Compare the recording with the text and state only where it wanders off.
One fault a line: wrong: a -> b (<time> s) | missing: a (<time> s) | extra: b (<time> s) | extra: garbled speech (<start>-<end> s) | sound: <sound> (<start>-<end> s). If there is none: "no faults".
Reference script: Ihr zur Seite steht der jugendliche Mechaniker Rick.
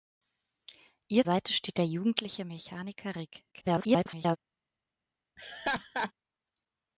missing: zur (1.3 s)
extra: garbled speech (3.5-4.4 s)
sound: laugh (5.4-6.1 s)